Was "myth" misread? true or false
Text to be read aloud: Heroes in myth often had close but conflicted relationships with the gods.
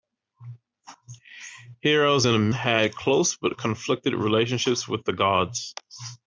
true